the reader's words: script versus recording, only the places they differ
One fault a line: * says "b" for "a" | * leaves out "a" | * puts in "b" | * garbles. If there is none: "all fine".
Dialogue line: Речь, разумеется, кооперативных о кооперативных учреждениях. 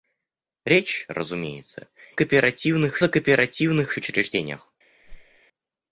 all fine